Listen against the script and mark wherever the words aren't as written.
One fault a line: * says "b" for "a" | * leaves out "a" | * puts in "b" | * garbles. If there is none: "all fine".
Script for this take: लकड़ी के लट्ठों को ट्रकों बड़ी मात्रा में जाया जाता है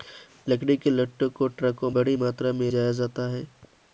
all fine